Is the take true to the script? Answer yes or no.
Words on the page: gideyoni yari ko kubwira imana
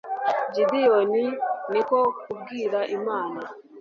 no